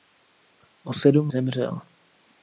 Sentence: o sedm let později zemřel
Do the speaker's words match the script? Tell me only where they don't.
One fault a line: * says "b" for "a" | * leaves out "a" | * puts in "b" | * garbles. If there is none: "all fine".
* leaves out "let později"